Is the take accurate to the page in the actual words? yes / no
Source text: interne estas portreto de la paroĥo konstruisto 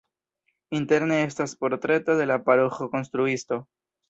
yes